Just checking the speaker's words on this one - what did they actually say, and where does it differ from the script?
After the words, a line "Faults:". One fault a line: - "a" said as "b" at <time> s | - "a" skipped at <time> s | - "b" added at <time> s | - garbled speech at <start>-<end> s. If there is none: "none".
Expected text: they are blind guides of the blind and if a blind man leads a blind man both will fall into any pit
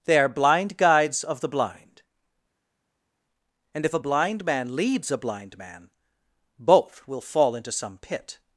they are blind guides of the blind and if a blind man leads a blind man both will fall into some pit
Faults:
- "any" said as "some" at 7.7 s